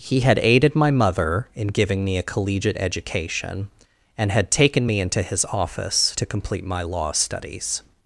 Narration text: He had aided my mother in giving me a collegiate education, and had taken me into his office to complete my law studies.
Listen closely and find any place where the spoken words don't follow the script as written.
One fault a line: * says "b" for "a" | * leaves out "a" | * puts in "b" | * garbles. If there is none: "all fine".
all fine